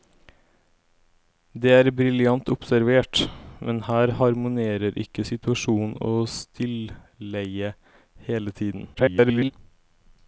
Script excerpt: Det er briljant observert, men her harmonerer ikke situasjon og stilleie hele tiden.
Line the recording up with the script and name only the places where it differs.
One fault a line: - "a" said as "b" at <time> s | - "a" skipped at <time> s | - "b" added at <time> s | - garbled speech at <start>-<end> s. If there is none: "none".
- garbled speech at 8.9-9.5 s